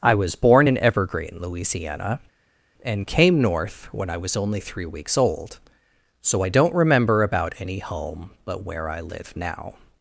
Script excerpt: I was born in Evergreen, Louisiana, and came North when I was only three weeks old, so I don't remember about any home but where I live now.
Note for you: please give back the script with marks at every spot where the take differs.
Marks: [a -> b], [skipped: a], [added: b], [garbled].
I was born in Evergreen, Louisiana, and came North when I was only three weeks old, so I don't remember about any home but where I live now.